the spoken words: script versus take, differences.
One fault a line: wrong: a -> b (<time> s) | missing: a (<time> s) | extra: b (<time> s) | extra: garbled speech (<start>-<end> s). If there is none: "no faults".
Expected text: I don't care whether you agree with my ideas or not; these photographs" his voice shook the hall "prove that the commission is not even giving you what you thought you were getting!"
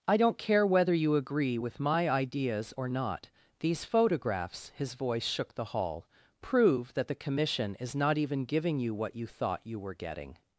no faults